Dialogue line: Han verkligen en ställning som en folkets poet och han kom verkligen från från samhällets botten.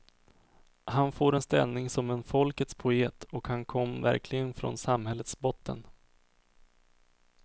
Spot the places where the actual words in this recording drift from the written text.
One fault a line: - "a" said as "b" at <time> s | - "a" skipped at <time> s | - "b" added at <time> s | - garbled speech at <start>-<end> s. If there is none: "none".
- "verkligen" said as "får" at 1.1 s
- "från" skipped at 4.8 s